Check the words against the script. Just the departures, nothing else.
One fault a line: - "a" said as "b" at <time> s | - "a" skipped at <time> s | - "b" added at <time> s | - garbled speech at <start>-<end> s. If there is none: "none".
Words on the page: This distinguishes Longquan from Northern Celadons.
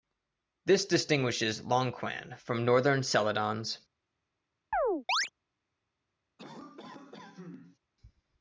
none